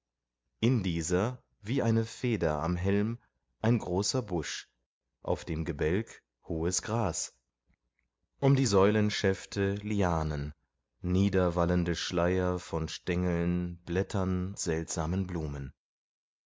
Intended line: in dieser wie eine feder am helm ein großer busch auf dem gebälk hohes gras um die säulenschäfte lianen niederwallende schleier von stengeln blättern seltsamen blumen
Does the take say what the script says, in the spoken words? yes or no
yes